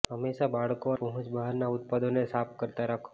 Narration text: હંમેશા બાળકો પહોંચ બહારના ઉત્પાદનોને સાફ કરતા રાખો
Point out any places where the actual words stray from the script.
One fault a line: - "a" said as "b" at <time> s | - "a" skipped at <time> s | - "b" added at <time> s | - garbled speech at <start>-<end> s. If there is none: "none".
none